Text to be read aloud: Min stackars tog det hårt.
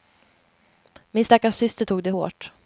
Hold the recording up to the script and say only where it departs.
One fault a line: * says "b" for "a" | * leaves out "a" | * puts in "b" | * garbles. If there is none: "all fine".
* puts in "syster"